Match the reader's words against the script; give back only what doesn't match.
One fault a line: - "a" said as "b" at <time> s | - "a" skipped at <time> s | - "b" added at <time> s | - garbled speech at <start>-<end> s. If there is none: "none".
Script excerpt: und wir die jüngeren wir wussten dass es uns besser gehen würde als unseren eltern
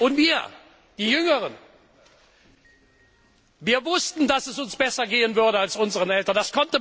none